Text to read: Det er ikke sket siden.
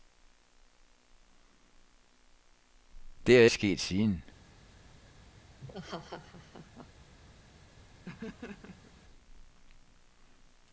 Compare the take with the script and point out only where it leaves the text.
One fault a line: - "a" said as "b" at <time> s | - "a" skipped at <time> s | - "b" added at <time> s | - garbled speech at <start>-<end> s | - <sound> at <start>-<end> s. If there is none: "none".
- "ikke" skipped at 3.5 s
- laugh at 5.6-6.9 s
- laugh at 8.0-8.9 s